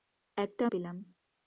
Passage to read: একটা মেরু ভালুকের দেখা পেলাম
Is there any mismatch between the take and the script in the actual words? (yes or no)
yes